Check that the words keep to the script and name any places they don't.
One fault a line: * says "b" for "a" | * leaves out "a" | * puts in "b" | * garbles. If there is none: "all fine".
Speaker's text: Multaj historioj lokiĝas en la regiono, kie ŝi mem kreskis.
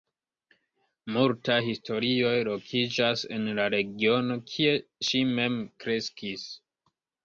all fine